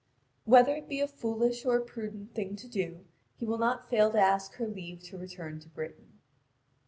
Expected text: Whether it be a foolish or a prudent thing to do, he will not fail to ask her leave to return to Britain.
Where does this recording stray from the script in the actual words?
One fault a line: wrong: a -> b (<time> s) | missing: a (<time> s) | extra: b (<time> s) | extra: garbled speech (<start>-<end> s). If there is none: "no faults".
no faults